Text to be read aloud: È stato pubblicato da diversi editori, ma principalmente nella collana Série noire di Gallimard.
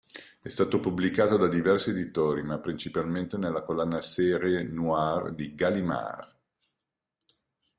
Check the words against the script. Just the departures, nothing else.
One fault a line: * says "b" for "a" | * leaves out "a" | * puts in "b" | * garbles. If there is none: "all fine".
all fine